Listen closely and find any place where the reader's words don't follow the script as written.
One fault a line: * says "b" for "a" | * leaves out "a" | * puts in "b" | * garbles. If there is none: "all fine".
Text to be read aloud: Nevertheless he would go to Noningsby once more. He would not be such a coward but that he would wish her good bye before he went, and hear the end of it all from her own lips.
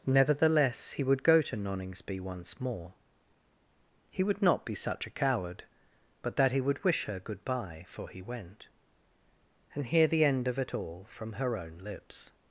* says "for" for "before"